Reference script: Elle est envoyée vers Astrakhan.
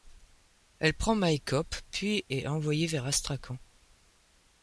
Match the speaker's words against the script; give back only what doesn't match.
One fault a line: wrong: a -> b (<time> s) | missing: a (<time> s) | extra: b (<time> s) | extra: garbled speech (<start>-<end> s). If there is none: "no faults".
extra: prend Maïkop puis (0.9 s)